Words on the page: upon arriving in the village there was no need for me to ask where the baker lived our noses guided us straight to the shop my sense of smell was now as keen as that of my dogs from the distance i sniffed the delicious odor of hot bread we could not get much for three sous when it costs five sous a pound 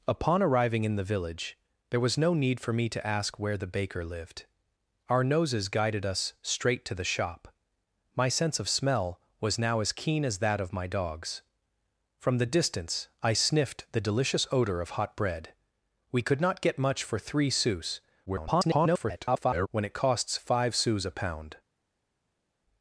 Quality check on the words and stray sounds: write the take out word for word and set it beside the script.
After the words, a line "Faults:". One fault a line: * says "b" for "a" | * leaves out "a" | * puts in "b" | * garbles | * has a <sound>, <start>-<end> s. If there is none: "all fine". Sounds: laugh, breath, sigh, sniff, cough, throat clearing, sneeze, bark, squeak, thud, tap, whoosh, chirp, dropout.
upon arriving in the village there was no need for me to ask where the baker lived our noses guided us straight to the shop my sense of smell was now as keen as that of my dogs from the distance i sniffed the delicious odor of hot bread we could not get much for three sous [garbled] when it costs five sous a pound
Faults:
* garbles